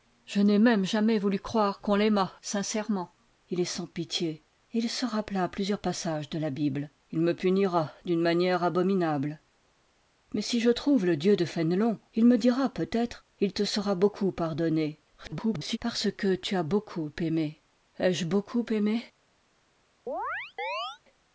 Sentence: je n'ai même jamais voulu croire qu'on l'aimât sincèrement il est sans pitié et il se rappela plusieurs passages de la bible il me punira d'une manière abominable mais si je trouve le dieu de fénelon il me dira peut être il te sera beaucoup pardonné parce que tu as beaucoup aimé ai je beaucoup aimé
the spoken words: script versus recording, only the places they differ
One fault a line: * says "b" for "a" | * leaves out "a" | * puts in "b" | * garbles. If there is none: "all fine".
* garbles